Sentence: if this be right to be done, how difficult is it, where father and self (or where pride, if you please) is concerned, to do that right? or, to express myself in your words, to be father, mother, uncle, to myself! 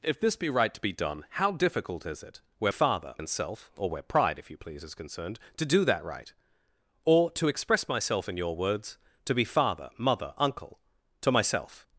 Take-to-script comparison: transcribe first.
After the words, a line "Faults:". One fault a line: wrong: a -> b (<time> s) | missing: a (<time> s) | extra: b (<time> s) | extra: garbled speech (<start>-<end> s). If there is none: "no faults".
if this be right to be done, how difficult is it, where father and self (or where pride, if you please) is concerned, to do that right? or, to express myself in your words, to be father, mother, uncle, to myself!
Faults:
no faults